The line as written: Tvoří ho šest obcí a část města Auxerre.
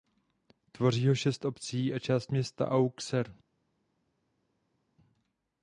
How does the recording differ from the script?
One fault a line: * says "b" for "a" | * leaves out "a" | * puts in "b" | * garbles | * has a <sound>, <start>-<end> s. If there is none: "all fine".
all fine